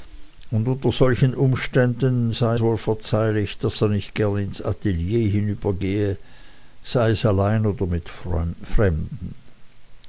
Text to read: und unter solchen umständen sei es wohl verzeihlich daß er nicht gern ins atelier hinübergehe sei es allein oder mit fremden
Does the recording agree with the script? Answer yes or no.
no